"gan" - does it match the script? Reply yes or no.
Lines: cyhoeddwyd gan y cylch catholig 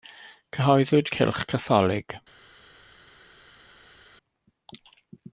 no